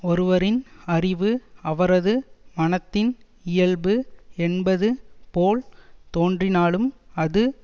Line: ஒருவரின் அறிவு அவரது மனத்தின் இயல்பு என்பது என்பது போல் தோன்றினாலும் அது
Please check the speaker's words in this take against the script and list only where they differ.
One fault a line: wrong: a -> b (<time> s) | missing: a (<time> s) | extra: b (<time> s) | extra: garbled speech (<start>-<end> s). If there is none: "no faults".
missing: என்பது (4.9 s)